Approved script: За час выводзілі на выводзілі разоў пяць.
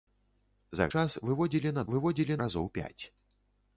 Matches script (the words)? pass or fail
pass